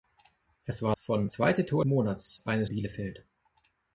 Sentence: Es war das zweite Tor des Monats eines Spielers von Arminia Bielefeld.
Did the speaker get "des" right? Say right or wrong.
wrong